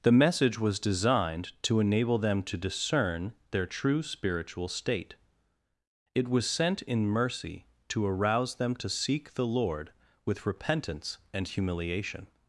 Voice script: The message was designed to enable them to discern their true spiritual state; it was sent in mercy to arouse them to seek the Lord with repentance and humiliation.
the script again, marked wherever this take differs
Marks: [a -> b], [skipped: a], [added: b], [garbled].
The message was designed to enable them to discern their true spiritual state; it was sent in mercy to arouse them to seek the Lord with repentance and humiliation.